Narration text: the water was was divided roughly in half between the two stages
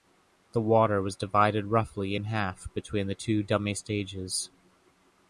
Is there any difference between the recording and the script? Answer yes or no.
yes